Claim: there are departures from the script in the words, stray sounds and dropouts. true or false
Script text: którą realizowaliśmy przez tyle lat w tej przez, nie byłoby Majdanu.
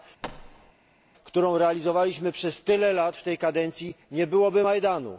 true